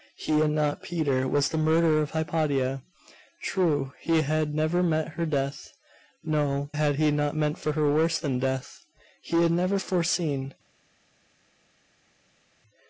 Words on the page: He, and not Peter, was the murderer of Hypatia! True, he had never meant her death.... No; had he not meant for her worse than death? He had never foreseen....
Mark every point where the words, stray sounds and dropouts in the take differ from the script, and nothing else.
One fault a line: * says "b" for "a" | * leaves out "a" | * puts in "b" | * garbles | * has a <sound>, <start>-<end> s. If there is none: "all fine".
all fine